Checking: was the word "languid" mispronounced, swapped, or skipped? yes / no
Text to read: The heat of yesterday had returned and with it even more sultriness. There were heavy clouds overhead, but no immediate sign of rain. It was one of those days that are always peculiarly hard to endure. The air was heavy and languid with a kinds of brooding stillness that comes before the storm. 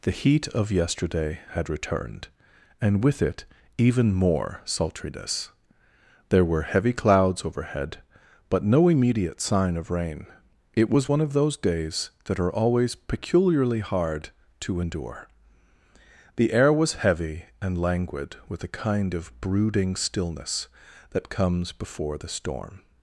no